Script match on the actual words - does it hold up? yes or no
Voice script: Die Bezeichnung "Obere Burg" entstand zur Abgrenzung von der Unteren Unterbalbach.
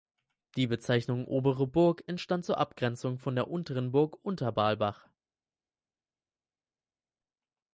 no